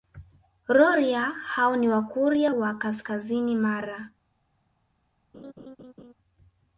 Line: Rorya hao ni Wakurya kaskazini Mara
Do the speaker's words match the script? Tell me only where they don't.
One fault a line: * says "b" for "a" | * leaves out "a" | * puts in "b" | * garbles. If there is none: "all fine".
* puts in "wa"